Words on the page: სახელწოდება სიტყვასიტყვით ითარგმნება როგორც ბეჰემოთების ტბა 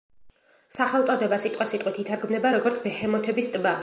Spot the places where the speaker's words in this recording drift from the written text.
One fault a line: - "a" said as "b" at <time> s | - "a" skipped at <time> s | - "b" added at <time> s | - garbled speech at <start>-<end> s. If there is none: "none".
none